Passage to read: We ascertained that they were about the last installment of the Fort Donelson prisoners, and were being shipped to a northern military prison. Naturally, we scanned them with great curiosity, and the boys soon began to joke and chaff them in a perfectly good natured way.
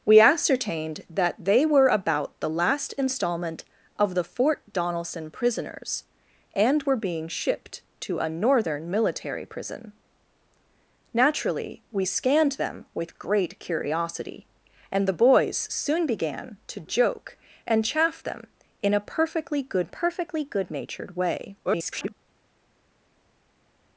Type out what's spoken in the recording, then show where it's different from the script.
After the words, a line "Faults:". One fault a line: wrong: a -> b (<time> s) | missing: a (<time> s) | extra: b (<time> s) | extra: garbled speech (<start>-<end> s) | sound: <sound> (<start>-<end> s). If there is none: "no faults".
We ascertained that they were about the last installment of the Fort Donelson prisoners, and were being shipped to a northern military prison. Naturally, we scanned them with great curiosity, and the boys soon began to joke and chaff them in a perfectly good perfectly good natured way. [garbled]
Faults:
extra: perfectly good (19.9 s)
extra: garbled speech (21.6-22.1 s)